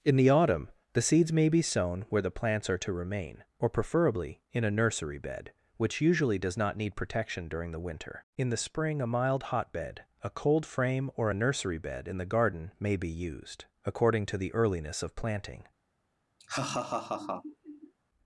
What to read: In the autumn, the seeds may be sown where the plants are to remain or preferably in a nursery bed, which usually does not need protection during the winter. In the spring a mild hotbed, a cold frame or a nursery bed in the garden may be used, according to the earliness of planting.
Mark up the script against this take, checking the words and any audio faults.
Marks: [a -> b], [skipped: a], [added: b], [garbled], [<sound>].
In the autumn, the seeds may be sown where the plants are to remain or preferably in a nursery bed, which usually does not need protection during the winter. In the spring a mild hotbed, a cold frame or a nursery bed in the garden may be used, according to the earliness of planting. [laugh]